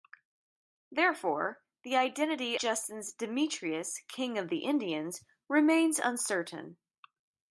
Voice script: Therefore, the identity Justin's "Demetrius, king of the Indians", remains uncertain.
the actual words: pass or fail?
pass